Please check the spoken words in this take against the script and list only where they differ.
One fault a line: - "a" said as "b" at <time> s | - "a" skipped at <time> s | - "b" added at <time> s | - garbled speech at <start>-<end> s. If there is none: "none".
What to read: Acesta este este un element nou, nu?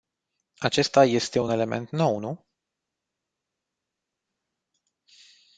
- "este" skipped at 1.4 s